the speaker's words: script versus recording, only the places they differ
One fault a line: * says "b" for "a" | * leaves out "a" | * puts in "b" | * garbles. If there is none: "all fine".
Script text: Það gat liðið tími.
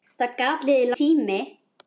all fine